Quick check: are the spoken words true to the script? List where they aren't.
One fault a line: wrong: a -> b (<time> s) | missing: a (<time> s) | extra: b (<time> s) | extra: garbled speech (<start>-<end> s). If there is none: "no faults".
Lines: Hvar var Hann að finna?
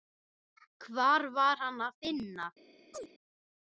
no faults